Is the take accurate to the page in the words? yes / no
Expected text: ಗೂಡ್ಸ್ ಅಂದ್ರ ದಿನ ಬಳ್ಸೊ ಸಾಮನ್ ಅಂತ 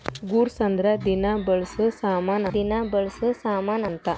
no